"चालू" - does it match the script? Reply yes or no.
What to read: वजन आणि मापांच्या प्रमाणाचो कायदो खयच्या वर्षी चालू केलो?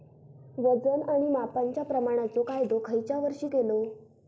no